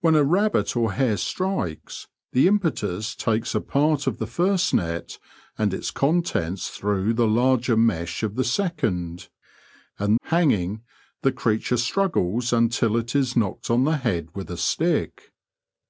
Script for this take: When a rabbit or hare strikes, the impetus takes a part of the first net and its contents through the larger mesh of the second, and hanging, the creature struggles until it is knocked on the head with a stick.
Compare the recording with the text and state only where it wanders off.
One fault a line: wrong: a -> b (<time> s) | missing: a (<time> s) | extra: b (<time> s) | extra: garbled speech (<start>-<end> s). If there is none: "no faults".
no faults